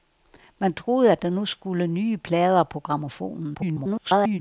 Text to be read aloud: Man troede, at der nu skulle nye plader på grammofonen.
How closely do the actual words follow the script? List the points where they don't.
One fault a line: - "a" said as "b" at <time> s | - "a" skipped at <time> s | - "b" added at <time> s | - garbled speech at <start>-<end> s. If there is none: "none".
- garbled speech at 3.5-4.4 s